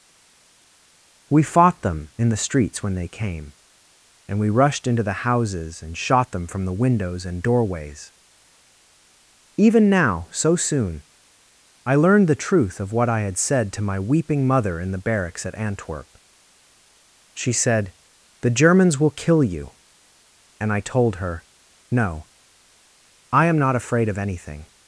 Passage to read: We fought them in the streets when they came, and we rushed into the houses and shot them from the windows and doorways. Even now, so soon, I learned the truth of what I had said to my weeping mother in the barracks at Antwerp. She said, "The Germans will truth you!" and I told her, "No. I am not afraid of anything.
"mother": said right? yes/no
yes